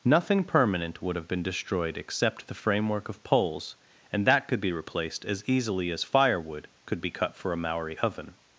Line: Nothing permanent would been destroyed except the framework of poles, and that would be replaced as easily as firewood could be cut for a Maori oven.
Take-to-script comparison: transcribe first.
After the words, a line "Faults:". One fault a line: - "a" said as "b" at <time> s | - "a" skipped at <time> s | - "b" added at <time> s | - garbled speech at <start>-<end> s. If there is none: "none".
Nothing permanent would have been destroyed except the framework of poles, and that could be replaced as easily as firewood could be cut for a Maori oven.
Faults:
- "have" added at 1.1 s
- "would" said as "could" at 4.5 s